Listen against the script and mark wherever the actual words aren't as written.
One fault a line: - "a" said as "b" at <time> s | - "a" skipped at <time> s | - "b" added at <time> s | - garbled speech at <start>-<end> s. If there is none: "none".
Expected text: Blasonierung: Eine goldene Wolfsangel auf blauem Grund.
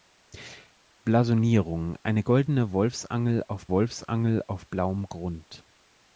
- "Wolfsangel auf" added at 3.7 s